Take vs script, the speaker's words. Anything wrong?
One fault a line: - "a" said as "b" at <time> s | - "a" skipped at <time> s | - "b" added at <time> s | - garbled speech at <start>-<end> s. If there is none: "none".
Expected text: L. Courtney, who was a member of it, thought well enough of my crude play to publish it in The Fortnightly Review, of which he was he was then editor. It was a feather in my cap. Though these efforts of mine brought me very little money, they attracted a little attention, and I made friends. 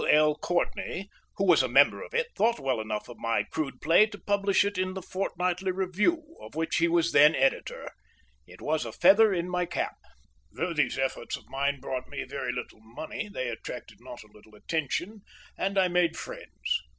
- "he was" skipped at 7.1 s
- "not" added at 14.0 s